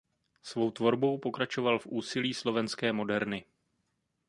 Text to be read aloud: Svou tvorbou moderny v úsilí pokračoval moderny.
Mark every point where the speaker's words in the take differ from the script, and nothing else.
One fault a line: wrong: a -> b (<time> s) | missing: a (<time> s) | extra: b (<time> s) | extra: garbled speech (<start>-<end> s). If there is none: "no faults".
wrong: moderny -> pokračoval (1.2 s)
wrong: pokračoval -> slovenské (2.3 s)